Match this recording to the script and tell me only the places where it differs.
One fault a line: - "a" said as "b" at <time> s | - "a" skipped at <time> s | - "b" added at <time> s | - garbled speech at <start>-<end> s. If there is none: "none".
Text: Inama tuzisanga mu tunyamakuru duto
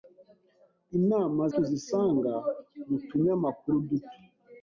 none